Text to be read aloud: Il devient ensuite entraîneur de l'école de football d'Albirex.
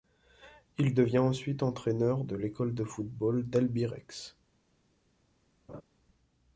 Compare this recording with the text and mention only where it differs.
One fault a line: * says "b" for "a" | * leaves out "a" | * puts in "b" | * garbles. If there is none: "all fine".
all fine